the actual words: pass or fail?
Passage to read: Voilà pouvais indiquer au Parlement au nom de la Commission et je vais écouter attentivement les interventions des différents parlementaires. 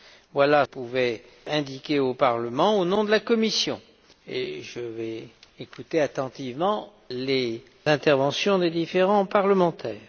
pass